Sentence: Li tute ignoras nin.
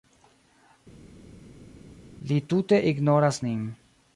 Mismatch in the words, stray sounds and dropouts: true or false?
false